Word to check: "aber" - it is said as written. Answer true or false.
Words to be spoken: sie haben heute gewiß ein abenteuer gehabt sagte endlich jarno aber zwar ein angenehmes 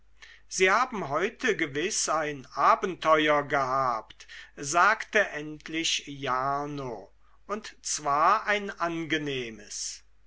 false